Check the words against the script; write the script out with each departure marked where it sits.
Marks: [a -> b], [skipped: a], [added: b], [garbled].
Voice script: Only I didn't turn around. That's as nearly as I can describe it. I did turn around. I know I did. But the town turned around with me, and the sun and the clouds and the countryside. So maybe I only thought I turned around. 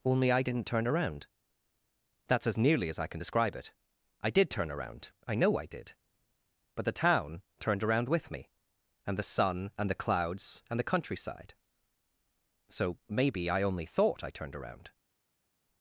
Only I didn't turn around. That's as nearly as I can describe it. I did turn around. I know I did. But the town turned around with me, and the sun and the clouds and the countryside. So maybe I only thought I turned around.